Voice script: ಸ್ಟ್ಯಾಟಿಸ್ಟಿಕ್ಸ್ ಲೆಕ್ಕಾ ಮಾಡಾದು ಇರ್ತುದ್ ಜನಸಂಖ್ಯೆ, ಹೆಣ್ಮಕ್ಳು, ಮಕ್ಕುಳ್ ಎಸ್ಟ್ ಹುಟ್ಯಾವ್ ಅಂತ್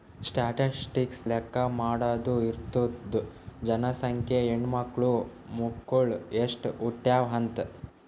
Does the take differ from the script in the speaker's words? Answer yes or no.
no